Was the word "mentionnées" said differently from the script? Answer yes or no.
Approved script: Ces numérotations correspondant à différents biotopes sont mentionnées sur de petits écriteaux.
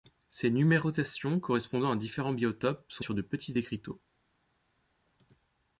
yes